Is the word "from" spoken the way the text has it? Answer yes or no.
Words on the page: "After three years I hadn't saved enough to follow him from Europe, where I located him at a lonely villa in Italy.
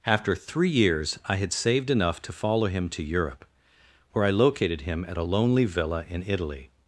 no